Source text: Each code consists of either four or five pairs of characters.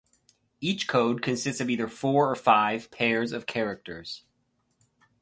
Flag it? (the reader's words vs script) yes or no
no